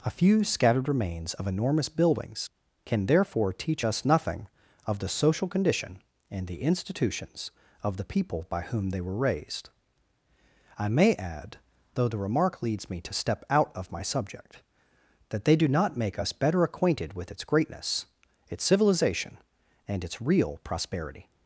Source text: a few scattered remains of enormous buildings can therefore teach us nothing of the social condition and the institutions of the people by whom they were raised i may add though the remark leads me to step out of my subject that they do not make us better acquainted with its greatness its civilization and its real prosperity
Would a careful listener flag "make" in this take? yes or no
no